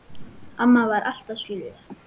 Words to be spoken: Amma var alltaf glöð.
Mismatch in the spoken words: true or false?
false